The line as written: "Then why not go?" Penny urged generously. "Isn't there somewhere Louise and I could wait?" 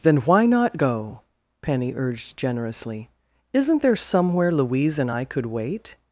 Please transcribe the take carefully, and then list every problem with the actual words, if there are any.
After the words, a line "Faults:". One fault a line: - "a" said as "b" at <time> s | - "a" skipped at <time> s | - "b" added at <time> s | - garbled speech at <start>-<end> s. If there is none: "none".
"Then why not go?" Penny urged generously. "Isn't there somewhere Louise and I could wait?"
Faults:
none